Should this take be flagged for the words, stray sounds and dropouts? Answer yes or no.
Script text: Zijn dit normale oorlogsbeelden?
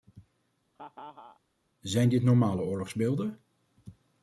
yes